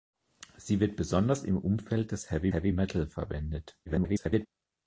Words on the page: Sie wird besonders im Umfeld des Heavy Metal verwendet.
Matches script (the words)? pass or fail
fail